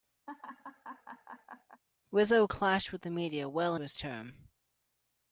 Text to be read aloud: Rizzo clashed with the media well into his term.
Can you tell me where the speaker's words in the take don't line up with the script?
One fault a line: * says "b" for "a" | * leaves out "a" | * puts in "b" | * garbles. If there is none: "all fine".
* leaves out "into"